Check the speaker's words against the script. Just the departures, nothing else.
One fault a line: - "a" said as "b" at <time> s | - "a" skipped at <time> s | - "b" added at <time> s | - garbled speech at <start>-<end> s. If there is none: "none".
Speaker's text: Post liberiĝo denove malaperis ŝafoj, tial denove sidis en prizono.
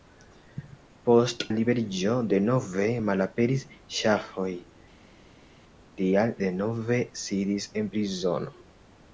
none